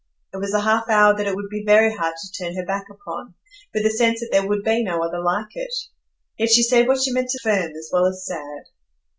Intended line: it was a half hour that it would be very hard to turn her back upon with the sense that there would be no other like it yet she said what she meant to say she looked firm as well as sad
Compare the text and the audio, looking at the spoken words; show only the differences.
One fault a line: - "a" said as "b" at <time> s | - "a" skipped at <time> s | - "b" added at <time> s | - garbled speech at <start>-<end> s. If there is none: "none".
- "say she looked" skipped at 7.4 s